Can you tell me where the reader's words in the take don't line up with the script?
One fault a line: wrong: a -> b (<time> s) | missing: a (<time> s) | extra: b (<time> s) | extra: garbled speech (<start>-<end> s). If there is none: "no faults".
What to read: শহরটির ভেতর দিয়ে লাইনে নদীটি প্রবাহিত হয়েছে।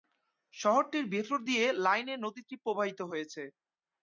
no faults